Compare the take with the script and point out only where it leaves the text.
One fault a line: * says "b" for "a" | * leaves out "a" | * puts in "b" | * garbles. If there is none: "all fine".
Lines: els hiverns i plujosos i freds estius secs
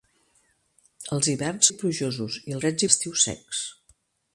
all fine